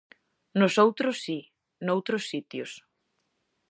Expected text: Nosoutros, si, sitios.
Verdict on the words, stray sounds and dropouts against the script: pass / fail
fail